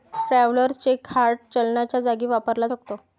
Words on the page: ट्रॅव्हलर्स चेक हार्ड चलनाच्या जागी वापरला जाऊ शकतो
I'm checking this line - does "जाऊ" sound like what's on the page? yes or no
no